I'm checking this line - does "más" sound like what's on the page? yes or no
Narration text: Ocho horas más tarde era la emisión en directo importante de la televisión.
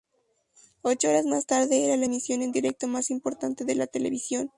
yes